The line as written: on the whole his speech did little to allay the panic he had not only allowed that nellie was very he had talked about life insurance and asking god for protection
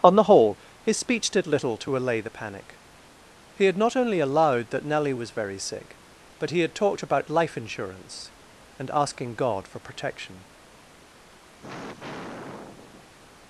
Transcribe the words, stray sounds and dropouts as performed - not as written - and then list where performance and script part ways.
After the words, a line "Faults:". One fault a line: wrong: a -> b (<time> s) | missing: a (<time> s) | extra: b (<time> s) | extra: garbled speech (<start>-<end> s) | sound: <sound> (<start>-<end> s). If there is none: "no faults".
on the whole his speech did little to allay the panic he had not only allowed that nellie was very sick but he had talked about life insurance and asking god for protection
Faults:
extra: sick but (5.6 s)
sound: sigh (11.6-13.1 s)